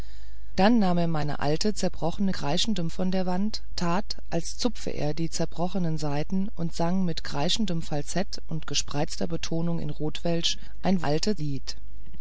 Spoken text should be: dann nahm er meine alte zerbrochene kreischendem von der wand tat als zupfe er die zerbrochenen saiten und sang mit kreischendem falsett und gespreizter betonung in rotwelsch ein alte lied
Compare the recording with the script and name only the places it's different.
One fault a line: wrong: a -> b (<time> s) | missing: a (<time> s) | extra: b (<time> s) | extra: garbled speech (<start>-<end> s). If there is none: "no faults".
no faults